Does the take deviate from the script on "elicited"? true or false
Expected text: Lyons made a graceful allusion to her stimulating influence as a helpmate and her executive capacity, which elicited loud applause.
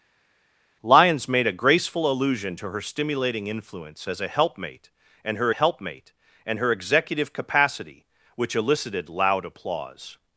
false